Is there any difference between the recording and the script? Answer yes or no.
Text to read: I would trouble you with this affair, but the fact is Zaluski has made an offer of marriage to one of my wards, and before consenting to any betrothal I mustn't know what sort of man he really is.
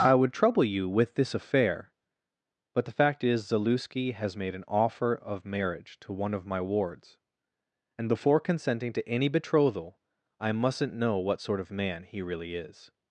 no